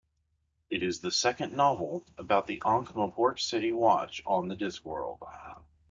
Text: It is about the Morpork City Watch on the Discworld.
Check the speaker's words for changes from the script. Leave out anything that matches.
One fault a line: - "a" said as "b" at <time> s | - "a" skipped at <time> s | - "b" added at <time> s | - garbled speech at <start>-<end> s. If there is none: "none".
- "the second novel" added at 1.0 s
- "Ankh" added at 2.6 s